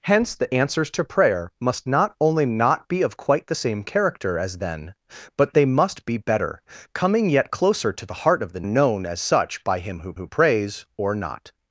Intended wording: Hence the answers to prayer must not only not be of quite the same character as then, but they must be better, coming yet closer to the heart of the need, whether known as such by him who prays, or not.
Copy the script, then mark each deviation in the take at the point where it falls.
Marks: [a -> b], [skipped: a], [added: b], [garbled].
Hence the answers to prayer must not only not be of quite the same character as then, but they must be better, coming yet closer to the heart of the [skipped: need, whether] known as such by him who [added: who] prays, or not.